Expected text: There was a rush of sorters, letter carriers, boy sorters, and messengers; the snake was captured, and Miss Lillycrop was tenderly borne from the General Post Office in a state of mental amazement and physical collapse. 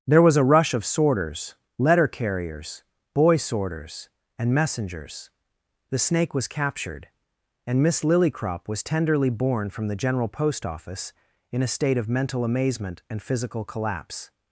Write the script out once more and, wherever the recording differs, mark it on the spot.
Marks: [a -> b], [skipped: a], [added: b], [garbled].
There was a rush of sorters, letter carriers, boy sorters, and messengers; the snake was captured, and Miss Lillycrop was tenderly borne from the General Post Office in a state of mental amazement and physical collapse.